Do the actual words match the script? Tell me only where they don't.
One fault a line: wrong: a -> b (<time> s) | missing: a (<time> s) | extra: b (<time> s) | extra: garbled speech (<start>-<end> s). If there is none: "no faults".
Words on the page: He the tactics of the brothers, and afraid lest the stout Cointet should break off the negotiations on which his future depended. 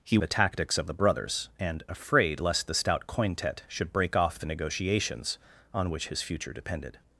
no faults